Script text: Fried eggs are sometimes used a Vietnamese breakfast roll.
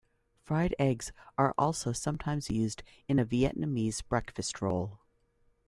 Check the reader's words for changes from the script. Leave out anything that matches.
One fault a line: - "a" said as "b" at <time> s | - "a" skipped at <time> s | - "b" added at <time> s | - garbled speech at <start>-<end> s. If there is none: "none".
- "also" added at 1.6 s
- "in" added at 3.1 s